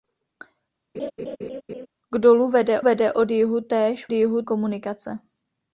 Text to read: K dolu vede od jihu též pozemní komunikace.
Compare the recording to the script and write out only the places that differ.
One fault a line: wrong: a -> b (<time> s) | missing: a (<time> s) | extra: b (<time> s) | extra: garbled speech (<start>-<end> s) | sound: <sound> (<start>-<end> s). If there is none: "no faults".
sound: laugh (0.9-1.9 s)
extra: vede (2.8 s)
wrong: pozemní -> jihu (4.1 s)